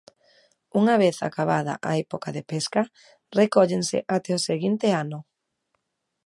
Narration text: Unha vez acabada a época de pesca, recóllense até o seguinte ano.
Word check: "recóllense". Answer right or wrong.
right